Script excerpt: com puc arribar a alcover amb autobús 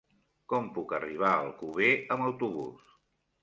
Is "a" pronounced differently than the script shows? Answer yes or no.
no